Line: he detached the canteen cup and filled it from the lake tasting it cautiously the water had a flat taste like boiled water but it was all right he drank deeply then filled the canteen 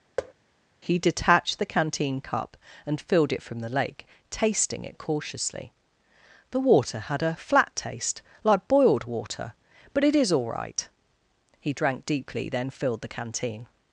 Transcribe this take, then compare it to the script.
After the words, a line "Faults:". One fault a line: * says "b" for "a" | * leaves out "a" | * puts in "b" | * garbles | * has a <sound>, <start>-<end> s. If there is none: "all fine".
he detached the canteen cup and filled it from the lake tasting it cautiously the water had a flat taste like boiled water but it is all right he drank deeply then filled the canteen
Faults:
* has a thud, 0.2-0.3 s
* says "is" for "was"